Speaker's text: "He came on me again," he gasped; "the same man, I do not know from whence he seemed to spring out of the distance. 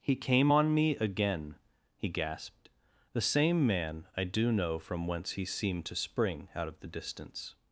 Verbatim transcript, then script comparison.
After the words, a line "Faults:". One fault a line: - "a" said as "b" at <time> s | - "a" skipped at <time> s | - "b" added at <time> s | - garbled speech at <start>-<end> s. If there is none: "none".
"He came on me again," he gasped; "the same man, I do know from whence he seemed to spring out of the distance.
Faults:
- "not" skipped at 4.5 s